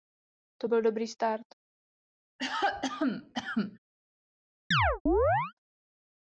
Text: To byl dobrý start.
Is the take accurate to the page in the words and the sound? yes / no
no